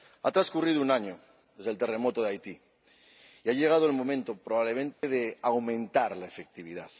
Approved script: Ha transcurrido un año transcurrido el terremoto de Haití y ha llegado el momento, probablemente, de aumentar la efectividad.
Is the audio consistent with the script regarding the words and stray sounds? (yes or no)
no